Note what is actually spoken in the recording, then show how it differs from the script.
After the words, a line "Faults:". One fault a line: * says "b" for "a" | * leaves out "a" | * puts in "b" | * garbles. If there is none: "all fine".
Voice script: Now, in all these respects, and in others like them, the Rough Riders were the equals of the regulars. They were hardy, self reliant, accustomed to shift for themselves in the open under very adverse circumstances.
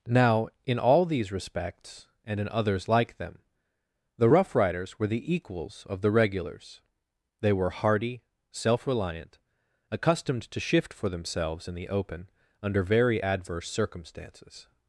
Now, in all these respects, and in others like them, the Rough Riders were the equals of the regulars. They were hardy, self reliant, accustomed to shift for themselves in the open under very adverse circumstances.
Faults:
all fine